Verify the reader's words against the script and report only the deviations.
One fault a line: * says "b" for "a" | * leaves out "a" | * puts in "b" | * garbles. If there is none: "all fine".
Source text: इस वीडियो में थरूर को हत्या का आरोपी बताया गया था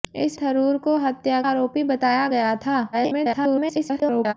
* leaves out "वीडियो में"
* leaves out "का"
* garbles